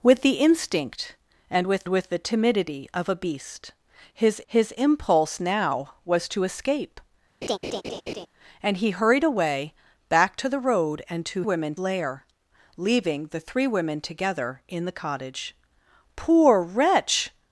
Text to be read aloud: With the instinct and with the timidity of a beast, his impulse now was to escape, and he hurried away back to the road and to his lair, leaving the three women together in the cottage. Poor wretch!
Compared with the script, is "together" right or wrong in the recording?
right